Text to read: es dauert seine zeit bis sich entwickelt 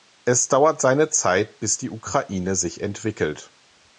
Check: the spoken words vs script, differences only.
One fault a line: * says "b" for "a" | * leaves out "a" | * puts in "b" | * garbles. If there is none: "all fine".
* puts in "die ukraine"